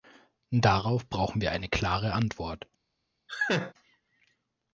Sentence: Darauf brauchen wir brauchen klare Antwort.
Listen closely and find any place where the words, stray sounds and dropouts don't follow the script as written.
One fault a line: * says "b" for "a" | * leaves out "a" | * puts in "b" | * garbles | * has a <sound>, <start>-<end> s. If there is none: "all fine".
* says "eine" for "brauchen"
* has a laugh, 3.3-3.7 s